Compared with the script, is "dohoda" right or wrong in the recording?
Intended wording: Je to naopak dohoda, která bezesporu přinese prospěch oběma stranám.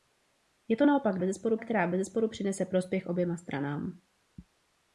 wrong